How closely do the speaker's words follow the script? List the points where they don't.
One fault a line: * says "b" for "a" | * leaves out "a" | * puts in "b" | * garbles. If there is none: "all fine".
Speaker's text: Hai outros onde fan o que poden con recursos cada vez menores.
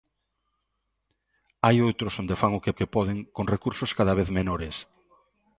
* puts in "que"